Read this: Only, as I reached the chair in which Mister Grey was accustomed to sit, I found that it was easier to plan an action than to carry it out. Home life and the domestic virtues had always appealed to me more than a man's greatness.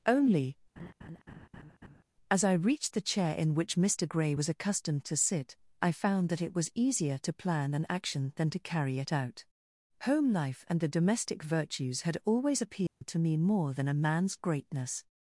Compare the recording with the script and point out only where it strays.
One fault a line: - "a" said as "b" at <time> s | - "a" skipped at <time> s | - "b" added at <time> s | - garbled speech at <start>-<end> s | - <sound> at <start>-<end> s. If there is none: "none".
- laugh at 0.8-2.0 s
- dropout at 12.9-13.0 s